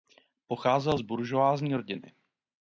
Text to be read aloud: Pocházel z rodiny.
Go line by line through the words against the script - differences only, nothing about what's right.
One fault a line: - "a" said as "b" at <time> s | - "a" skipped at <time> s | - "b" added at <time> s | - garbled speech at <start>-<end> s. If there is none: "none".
- "buržoazní" added at 1.0 s